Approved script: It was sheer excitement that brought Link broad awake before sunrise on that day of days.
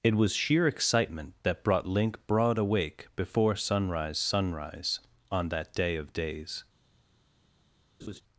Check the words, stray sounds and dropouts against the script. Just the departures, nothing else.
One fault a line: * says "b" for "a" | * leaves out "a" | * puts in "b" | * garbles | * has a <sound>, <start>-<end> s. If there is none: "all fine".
* puts in "sunrise"
* has a laugh, 8.0-8.2 s